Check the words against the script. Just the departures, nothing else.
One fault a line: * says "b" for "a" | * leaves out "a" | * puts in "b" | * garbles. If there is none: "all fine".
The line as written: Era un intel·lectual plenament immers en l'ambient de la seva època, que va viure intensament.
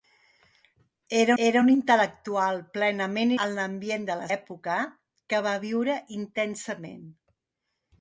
* puts in "era"
* leaves out "immers"
* leaves out "seva"